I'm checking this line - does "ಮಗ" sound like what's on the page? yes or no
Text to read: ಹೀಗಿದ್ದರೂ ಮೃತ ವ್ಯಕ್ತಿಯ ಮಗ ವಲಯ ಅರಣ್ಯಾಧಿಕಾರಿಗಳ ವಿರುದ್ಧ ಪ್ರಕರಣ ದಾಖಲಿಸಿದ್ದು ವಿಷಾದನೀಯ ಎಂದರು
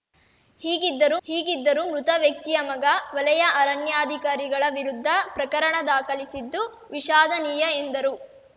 yes